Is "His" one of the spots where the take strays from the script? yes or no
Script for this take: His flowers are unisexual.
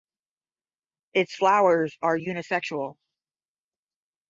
yes